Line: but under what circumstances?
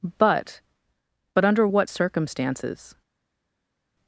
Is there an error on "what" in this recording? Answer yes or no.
no